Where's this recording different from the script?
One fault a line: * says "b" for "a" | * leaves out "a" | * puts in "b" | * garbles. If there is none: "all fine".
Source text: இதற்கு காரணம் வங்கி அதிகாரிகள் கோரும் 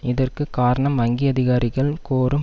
all fine